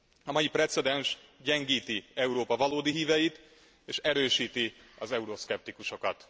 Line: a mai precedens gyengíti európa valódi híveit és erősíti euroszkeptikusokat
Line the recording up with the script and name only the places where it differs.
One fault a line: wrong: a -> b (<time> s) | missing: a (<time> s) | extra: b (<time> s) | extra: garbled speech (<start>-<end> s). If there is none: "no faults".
extra: az (5.0 s)